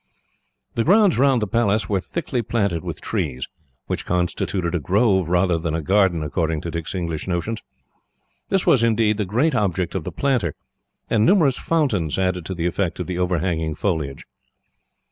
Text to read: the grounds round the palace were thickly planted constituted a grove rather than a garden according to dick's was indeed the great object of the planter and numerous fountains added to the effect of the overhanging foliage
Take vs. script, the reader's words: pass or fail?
fail